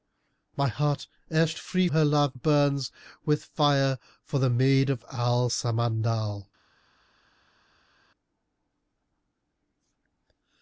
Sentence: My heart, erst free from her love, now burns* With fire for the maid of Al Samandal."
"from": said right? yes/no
no